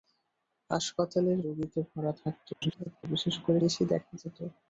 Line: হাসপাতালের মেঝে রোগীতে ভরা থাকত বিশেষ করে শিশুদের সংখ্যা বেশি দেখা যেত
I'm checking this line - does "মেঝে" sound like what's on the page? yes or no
no